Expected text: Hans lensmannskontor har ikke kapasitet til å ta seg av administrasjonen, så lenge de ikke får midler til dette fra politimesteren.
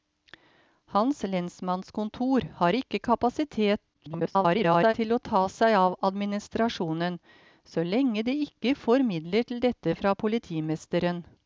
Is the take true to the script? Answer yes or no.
no